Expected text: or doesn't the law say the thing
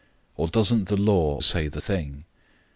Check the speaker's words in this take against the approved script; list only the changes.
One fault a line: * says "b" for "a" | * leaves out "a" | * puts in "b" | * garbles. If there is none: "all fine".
all fine